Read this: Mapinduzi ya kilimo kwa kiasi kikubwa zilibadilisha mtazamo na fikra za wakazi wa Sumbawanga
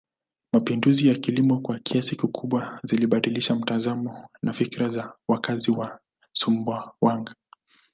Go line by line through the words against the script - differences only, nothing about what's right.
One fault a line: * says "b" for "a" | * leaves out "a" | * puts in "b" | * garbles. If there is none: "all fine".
all fine